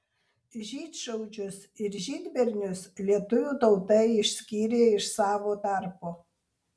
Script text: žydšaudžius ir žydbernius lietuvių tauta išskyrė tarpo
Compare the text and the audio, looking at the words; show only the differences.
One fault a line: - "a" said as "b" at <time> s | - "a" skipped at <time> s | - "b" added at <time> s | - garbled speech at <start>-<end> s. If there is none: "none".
- "iš savo" added at 5.0 s